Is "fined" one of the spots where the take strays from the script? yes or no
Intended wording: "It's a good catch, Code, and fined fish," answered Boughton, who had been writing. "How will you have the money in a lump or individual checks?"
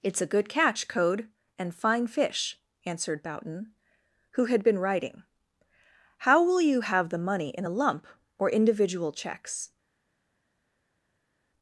yes